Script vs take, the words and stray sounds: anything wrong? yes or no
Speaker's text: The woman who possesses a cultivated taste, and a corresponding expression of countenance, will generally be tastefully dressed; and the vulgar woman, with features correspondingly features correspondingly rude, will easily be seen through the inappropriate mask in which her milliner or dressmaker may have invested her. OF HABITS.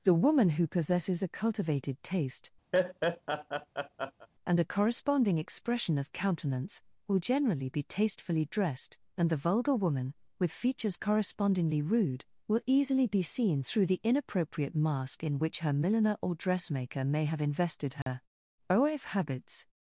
yes